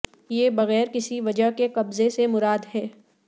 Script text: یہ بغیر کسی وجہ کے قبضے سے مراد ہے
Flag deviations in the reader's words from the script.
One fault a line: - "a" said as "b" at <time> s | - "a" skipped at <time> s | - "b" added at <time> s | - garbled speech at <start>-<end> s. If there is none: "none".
none